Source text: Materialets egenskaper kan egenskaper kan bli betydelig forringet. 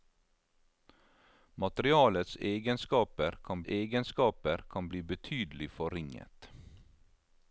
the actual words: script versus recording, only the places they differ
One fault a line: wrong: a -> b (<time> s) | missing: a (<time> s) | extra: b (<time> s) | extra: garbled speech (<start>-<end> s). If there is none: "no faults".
no faults